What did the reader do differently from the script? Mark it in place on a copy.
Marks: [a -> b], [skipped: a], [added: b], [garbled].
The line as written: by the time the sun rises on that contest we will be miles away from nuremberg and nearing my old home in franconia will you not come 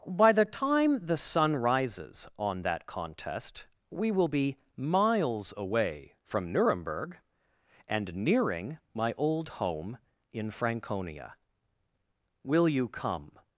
by the time the sun rises on that contest we will be miles away from nuremberg and nearing my old home in franconia will you [skipped: not] come